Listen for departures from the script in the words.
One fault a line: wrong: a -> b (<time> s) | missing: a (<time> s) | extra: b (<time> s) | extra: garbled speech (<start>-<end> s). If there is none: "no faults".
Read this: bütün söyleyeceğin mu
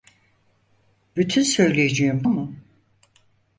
no faults